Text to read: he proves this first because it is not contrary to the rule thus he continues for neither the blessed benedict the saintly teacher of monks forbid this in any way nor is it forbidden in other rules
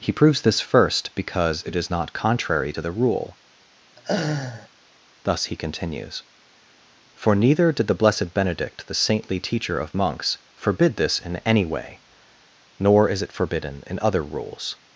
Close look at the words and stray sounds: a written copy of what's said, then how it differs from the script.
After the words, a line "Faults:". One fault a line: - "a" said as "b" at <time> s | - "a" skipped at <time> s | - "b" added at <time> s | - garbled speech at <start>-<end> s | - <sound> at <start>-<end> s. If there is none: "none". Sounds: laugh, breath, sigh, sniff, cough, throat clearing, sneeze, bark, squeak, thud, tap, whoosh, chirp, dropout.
he proves this first because it is not contrary to the rule thus he continues for neither did the blessed benedict the saintly teacher of monks forbid this in any way nor is it forbidden in other rules
Faults:
- laugh at 4.0-4.7 s
- "did" added at 7.7 s